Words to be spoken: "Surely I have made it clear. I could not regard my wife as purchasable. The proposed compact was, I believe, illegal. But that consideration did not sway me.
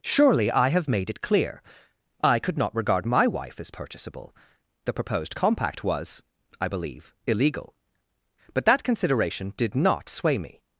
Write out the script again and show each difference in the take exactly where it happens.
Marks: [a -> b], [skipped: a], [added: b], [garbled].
"Surely I have made it clear. I could not regard my wife as purchasable. The proposed compact was, I believe, illegal. But that consideration did not sway me.